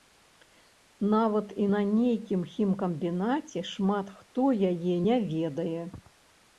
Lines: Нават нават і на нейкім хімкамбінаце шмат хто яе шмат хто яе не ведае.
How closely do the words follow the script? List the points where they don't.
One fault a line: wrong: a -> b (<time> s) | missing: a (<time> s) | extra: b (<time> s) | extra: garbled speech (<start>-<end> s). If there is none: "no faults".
missing: нават (1.5 s)
missing: шмат хто яе (4.9 s)